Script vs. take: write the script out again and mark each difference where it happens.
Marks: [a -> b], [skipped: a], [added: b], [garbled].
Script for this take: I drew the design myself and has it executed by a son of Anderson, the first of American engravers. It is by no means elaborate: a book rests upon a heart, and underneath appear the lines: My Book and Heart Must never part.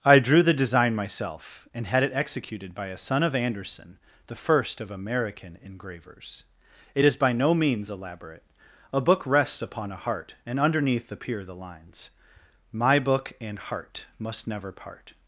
I drew the design myself and [has -> had] it executed by a son of Anderson, the first of American engravers. It is by no means elaborate: a book rests upon a heart, and underneath appear the lines: My Book and Heart Must never part.